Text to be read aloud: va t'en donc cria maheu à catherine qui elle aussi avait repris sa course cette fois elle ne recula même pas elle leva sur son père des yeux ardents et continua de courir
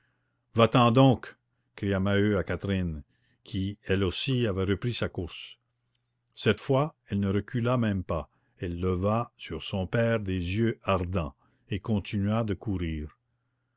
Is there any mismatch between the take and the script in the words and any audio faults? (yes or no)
no